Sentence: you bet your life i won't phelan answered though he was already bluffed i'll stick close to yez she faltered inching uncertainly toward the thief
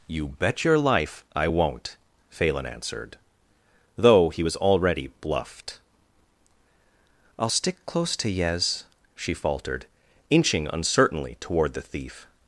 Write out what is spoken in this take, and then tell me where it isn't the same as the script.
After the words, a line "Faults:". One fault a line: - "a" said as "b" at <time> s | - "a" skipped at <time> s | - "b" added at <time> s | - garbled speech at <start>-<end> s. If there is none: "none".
you bet your life i won't phelan answered though he was already bluffed i'll stick close to yez she faltered inching uncertainly toward the thief
Faults:
none